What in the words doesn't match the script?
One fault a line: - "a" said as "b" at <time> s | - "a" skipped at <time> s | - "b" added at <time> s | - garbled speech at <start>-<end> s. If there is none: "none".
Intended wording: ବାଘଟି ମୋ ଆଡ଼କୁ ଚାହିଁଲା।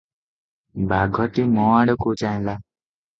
none